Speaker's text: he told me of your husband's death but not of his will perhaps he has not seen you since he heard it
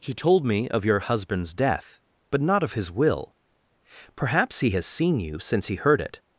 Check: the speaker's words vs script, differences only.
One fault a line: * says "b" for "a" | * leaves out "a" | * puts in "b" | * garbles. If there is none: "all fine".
* leaves out "not"